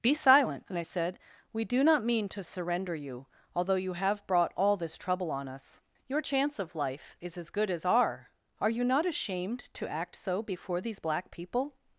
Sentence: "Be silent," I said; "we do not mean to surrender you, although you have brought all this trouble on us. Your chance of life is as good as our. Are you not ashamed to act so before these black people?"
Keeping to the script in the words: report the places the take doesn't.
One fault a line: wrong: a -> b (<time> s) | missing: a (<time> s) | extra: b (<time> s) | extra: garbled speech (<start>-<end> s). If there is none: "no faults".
no faults